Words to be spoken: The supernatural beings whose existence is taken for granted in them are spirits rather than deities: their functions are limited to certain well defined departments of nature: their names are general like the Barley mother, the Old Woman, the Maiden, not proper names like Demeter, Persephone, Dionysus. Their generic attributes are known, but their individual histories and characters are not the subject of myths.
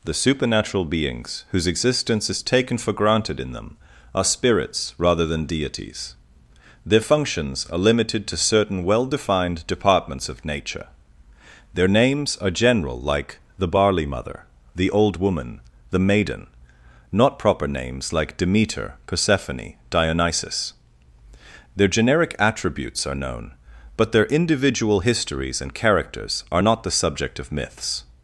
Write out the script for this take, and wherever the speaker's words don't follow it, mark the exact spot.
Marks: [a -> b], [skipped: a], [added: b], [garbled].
The supernatural beings whose existence is taken for granted in them are spirits rather than deities: their functions are limited to certain well defined departments of nature: their names are general like the Barley mother, the Old Woman, the Maiden, not proper names like Demeter, Persephone, Dionysus. Their generic attributes are known, but their individual histories and characters are not the subject of myths.